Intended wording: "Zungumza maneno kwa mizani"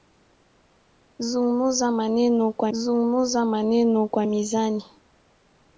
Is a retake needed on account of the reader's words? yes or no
yes